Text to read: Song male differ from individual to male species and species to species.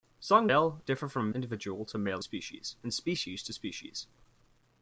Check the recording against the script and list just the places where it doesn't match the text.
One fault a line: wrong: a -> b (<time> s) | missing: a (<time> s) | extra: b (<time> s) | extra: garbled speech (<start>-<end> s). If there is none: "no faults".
no faults